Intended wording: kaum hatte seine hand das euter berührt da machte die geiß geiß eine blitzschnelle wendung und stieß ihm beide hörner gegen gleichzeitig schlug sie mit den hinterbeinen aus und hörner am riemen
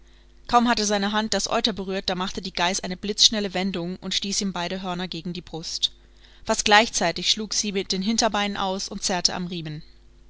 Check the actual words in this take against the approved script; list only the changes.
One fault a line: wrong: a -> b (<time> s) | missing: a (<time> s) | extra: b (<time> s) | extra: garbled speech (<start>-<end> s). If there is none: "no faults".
missing: geiß (2.8 s)
extra: die brust fast (5.3 s)
wrong: hörner -> zerrte (9.0 s)